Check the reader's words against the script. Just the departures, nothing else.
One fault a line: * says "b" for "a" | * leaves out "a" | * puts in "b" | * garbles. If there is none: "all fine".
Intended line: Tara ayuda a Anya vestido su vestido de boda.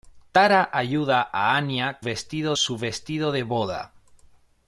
all fine